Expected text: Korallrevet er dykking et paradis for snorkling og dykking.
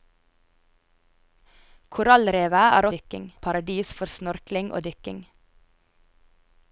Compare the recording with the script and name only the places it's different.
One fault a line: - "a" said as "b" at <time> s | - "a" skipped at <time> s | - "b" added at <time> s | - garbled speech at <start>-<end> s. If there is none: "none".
none